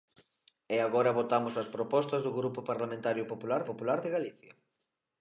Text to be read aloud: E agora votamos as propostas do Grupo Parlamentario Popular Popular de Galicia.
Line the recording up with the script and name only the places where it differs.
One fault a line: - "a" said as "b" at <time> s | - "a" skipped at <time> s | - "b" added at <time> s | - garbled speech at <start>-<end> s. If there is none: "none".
none